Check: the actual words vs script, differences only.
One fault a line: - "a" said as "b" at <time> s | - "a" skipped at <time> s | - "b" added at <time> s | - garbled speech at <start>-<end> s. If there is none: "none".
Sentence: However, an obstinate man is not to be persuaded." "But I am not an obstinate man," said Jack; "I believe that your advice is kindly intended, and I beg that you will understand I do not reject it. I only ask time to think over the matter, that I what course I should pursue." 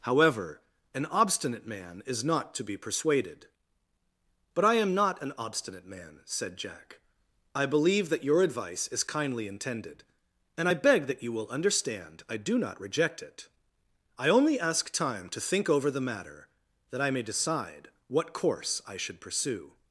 - "may decide" added at 17.1 s